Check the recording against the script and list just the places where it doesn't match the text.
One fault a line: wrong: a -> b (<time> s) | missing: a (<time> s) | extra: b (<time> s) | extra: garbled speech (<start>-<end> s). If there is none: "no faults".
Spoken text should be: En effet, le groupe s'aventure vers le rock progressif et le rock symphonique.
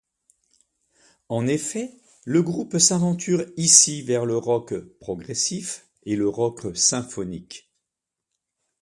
extra: ici (3.5 s)